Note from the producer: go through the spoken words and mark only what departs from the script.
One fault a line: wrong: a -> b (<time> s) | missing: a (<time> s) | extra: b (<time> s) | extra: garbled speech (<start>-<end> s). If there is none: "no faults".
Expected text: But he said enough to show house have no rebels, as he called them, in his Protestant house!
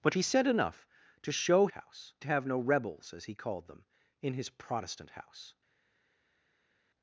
no faults